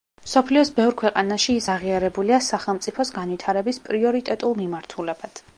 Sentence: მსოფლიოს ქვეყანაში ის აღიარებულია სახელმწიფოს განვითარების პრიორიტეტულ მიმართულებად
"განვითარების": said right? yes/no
yes